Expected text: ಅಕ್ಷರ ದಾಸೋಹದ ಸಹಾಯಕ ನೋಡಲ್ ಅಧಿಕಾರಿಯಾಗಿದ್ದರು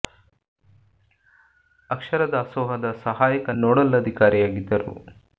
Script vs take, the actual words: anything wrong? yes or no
no